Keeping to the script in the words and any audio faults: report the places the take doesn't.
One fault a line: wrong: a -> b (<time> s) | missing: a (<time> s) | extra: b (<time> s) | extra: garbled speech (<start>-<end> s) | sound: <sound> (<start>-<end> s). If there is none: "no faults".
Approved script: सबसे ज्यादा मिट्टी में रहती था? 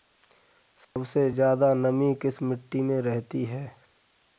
sound: dropout (0.8-1.0 s)
extra: नमी किस (1.7 s)
wrong: था -> है (3.4 s)